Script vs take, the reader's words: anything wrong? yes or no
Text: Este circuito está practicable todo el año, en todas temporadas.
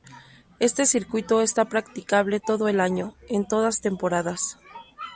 no